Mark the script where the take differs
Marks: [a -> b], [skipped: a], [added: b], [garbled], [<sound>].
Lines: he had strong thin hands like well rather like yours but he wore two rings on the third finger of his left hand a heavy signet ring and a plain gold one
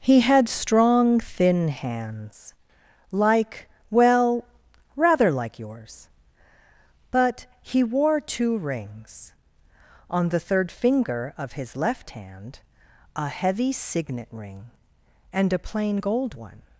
he had strong thin hands like well rather like yours but he wore two rings on the third finger of his left hand a heavy signet ring and a plain gold one